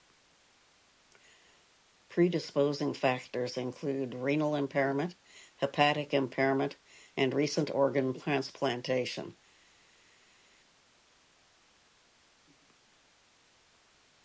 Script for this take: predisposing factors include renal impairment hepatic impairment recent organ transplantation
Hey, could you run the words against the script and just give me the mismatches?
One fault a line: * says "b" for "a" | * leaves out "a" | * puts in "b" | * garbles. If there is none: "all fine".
* puts in "and"